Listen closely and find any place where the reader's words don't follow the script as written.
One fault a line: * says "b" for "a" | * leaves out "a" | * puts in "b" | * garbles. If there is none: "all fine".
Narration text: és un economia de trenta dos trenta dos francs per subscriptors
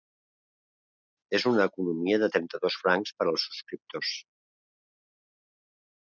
* says "una" for "un"
* leaves out "trenta dos"
* puts in "als"